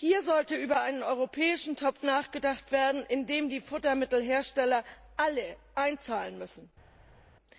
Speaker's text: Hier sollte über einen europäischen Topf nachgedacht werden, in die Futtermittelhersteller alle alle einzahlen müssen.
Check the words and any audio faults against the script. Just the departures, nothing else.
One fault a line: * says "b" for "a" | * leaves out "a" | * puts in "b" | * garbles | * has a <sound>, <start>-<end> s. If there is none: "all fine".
* puts in "den"
* leaves out "alle"